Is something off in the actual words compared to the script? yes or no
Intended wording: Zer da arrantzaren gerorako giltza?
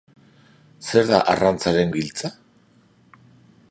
yes